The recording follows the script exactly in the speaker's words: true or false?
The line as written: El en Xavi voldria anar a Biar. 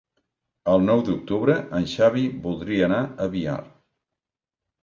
false